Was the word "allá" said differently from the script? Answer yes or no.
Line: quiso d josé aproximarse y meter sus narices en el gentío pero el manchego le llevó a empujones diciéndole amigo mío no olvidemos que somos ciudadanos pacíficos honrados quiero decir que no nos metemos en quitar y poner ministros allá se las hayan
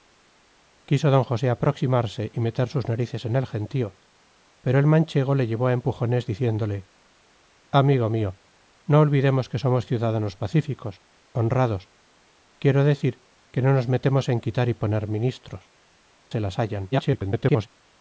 yes